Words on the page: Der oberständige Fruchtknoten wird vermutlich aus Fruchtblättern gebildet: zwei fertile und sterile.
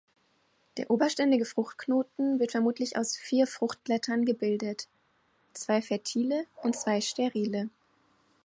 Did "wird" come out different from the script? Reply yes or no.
no